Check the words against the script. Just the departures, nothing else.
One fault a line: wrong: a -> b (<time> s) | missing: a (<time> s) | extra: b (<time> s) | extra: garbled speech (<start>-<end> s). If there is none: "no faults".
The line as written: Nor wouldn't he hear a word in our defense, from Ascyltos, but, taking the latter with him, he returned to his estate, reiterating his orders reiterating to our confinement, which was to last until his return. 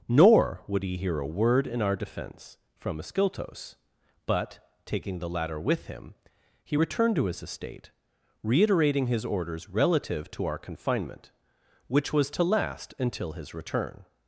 wrong: wouldn't -> would (0.7 s)
wrong: reiterating -> relative (9.7 s)